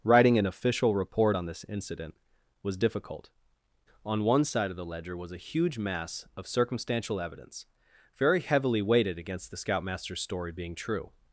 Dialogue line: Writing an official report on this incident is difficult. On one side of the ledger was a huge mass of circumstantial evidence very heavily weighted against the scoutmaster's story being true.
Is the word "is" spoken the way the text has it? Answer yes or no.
no